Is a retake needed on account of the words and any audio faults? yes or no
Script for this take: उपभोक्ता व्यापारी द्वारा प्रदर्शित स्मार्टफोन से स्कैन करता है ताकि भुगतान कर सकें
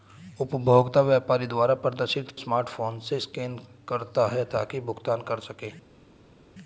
no